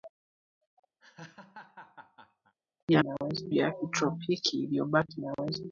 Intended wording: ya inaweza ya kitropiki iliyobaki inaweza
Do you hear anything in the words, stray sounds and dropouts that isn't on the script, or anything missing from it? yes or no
yes